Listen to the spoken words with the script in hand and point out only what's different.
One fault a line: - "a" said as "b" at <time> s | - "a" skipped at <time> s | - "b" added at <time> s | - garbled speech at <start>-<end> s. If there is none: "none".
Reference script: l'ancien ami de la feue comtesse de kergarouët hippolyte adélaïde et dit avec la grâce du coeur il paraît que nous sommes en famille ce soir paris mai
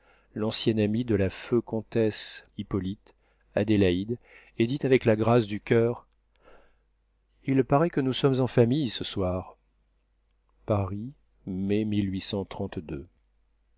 - "de kergarouët" skipped at 2.4 s